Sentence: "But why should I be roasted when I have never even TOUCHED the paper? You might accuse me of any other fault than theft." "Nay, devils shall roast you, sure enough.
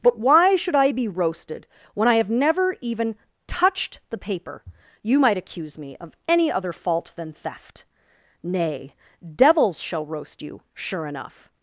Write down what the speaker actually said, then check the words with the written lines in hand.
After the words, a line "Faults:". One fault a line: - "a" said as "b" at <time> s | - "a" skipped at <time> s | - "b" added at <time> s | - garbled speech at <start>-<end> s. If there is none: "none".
"But why should I be roasted when I have never even TOUCHED the paper? You might accuse me of any other fault than theft." "Nay, devils shall roast you, sure enough.
Faults:
none